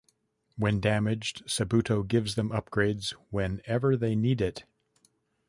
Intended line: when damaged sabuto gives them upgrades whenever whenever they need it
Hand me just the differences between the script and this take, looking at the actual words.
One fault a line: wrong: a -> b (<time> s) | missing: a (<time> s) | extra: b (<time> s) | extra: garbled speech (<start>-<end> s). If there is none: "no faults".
missing: whenever (4.0 s)